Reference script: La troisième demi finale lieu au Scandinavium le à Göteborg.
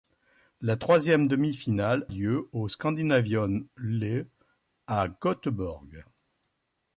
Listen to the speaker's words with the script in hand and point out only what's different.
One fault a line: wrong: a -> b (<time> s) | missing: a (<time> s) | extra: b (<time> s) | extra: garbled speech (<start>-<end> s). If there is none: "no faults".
no faults